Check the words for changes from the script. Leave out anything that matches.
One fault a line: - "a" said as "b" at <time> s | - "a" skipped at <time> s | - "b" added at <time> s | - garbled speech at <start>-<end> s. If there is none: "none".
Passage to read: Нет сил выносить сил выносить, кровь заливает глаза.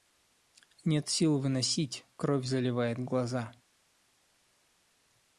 - "сил выносить" skipped at 2.1 s